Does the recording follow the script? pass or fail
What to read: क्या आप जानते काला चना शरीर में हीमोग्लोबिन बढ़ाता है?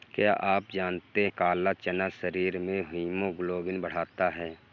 pass